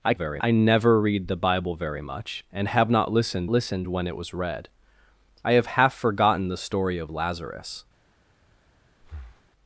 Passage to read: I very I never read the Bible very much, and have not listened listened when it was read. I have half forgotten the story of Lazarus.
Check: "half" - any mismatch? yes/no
no